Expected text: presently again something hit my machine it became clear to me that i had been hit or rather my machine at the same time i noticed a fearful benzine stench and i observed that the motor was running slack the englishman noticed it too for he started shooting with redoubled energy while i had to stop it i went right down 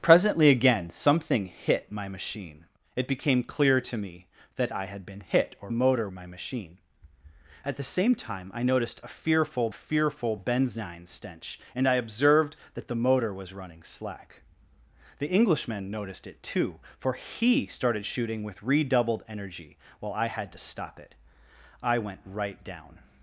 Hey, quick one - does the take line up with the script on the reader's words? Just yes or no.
no